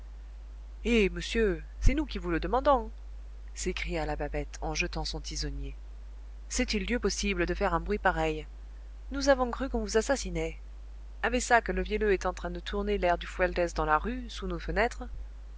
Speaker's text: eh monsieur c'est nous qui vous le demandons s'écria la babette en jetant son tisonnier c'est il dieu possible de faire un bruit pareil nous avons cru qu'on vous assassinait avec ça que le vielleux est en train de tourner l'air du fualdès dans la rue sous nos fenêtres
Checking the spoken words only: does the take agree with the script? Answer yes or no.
yes